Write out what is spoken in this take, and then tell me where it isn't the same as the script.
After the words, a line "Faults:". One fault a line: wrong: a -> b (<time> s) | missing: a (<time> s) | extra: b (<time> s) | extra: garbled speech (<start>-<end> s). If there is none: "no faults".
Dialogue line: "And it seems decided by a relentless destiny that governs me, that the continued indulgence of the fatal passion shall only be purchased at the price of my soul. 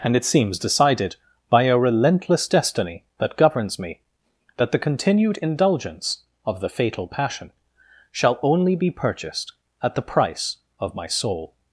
"And it seems decided by a relentless destiny that governs me, that the continued indulgence of the fatal passion shall only be purchased at the price of my soul.
Faults:
no faults